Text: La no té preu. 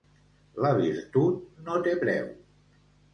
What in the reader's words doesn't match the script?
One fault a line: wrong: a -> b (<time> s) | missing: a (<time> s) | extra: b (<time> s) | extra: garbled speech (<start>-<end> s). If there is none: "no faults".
extra: virtut (0.8 s)